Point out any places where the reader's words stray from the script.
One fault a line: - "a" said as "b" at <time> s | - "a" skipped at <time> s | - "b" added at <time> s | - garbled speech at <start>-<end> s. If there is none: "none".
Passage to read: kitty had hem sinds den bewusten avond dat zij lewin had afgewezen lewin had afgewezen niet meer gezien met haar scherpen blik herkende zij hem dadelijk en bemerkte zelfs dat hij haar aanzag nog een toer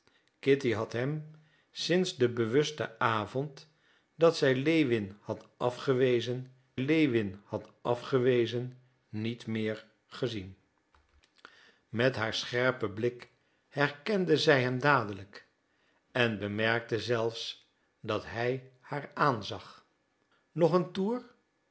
none